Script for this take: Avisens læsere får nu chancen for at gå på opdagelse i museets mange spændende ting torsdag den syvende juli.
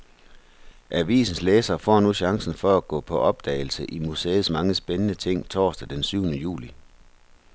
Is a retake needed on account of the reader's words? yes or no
no